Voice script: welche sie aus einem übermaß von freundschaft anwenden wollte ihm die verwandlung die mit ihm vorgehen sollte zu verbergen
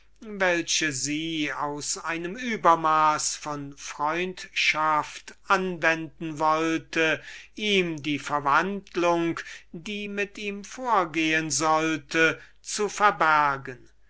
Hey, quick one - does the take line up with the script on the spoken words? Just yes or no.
yes